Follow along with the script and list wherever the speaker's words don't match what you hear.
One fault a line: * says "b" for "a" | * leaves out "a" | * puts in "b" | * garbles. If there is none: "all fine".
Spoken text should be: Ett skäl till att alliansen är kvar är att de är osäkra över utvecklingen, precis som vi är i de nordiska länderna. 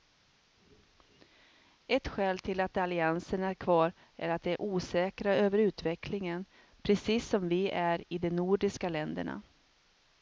all fine